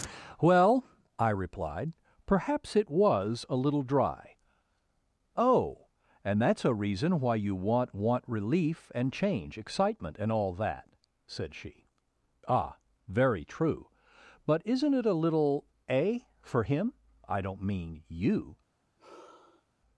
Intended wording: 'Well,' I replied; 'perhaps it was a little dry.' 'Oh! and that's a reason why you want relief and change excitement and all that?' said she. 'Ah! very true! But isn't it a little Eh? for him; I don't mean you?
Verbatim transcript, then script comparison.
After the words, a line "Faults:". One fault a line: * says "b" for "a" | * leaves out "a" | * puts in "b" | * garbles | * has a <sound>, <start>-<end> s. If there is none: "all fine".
'Well,' I replied; 'perhaps it was a little dry.' 'Oh! and that's a reason why you want want relief and change excitement and all that?' said she. 'Ah! very true! But isn't it a little Eh? for him; I don't mean you?
Faults:
* puts in "want"
* has a sigh, 19.0-19.7 s